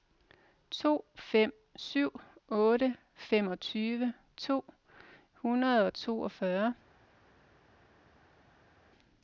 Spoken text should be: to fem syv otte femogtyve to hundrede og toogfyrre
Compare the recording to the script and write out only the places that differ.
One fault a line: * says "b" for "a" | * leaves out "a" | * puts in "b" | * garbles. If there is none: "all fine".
all fine